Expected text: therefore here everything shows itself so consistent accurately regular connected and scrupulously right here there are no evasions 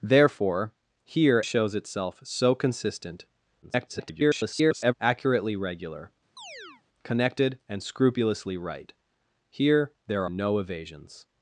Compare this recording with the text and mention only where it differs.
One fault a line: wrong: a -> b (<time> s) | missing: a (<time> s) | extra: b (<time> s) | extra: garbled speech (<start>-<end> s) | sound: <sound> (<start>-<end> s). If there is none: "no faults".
missing: everything (1.4 s)
extra: garbled speech (3.6-4.9 s)
sound: chirp (6.4-6.8 s)
missing: are (10.2 s)